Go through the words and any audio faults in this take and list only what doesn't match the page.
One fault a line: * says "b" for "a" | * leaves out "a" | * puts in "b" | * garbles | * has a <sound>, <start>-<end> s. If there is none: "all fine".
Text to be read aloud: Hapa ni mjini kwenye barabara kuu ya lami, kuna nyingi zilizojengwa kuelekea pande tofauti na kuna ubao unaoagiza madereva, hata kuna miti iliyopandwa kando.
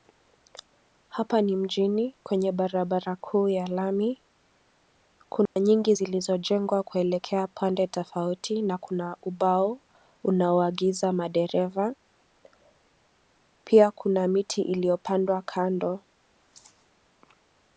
* has a dropout, 5.5-5.6 s
* says "pia" for "hata"